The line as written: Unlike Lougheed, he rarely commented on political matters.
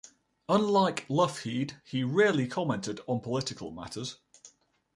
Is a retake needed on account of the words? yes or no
no